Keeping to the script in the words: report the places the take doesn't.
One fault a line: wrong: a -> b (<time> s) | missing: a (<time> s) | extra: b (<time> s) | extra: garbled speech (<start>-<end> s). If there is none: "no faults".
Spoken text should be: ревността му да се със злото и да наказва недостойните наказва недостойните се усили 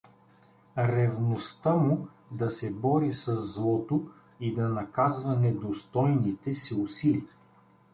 extra: бори (2.7 s)
missing: наказва недостойните (6.5 s)